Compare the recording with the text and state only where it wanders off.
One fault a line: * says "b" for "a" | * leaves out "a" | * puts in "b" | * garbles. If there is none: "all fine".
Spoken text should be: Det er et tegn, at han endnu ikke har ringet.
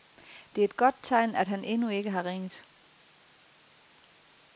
* puts in "godt"